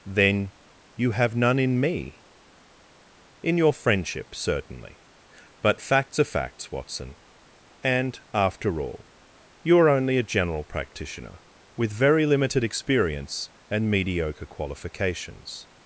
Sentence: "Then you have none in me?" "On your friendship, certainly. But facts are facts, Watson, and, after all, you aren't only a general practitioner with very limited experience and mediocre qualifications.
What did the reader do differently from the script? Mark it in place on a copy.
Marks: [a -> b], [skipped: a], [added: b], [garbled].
"Then you have none in me?" ["On -> In] your friendship, certainly. But facts are facts, Watson, and, after all, you [aren't -> are] only a general practitioner with very limited experience and mediocre qualifications.